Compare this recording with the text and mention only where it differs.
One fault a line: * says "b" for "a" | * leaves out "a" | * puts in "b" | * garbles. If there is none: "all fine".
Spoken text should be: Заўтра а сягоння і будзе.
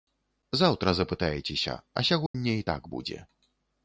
* puts in "запытаецеся"
* puts in "так"